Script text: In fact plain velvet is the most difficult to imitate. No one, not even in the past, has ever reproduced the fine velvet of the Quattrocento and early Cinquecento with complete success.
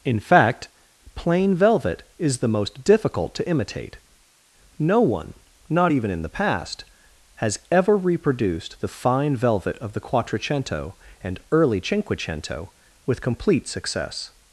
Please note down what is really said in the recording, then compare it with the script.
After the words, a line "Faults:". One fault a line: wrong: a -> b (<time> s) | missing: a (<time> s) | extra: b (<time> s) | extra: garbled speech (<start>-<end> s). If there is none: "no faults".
In fact plain velvet is the most difficult to imitate. No one, not even in the past, has ever reproduced the fine velvet of the Quattrocento and early Cinquecento with complete success.
Faults:
no faults